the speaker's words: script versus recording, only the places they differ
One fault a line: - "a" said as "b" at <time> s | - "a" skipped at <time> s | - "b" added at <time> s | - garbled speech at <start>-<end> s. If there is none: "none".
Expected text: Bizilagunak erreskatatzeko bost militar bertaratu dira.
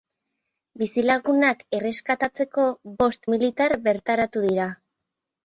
none